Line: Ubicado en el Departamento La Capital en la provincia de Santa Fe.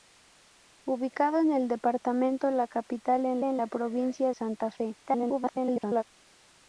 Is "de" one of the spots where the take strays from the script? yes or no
yes